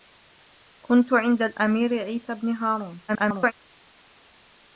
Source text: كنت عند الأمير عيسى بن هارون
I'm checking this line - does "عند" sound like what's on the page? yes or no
yes